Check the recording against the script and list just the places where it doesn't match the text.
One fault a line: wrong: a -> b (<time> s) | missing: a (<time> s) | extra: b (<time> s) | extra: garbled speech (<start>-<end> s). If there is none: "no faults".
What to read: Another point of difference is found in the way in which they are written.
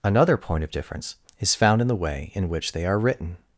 no faults